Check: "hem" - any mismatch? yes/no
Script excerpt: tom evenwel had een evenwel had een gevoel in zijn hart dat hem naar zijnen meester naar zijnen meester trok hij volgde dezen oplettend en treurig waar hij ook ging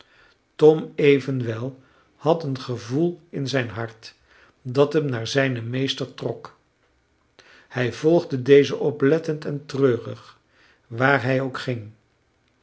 no